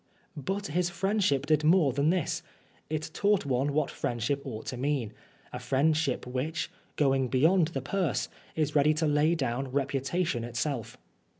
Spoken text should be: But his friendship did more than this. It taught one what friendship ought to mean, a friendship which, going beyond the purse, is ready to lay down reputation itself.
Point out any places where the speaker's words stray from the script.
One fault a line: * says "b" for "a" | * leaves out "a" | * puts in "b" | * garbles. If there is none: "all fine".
all fine